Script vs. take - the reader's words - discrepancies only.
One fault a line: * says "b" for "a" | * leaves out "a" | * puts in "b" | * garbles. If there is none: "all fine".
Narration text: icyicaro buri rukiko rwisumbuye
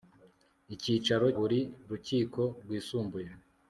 all fine